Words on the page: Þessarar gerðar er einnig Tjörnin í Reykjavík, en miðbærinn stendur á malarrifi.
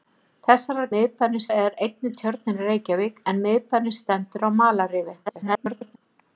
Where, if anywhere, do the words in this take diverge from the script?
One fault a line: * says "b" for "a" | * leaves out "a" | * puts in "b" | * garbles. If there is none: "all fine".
* says "miðbærinn" for "gerðar"
* garbles